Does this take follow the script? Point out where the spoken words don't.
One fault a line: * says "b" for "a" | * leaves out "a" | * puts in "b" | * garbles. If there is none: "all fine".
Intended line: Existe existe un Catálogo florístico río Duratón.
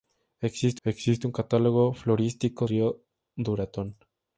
all fine